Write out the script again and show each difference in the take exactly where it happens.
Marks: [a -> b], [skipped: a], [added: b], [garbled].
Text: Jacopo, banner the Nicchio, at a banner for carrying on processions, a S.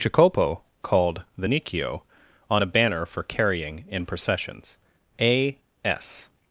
Jacopo, [banner -> called] the Nicchio, [at -> on] a banner for carrying [on -> in] processions, a S.